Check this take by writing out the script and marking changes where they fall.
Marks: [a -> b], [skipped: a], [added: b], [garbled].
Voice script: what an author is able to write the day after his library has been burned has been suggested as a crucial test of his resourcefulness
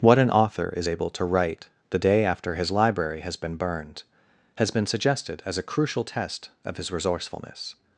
what an author is able to write the day after his library has been burned has been suggested as a crucial test of his resourcefulness